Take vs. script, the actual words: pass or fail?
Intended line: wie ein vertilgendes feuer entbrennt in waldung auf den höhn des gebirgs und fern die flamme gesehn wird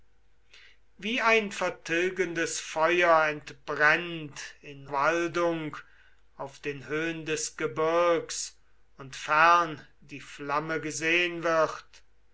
pass